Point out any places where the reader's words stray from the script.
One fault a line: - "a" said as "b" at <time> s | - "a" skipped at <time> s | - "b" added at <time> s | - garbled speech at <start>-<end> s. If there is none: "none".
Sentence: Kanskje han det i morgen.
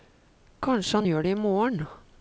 - "gjør" added at 1.1 s